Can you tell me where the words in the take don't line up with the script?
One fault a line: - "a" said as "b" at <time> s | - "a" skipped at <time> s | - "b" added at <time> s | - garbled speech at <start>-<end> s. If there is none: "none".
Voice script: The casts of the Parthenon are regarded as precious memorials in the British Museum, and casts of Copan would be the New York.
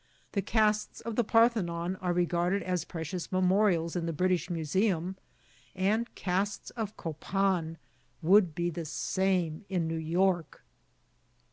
- "same in" added at 8.8 s